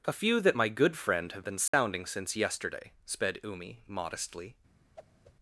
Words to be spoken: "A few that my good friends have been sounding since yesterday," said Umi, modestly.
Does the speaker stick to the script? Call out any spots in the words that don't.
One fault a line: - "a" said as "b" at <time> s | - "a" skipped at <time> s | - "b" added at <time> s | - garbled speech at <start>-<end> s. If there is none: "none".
- "friends" said as "friend" at 1.0 s
- "said" said as "sped" at 3.0 s